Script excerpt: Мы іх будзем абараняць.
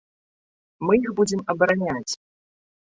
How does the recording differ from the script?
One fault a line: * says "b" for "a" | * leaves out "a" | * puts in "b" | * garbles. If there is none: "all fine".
all fine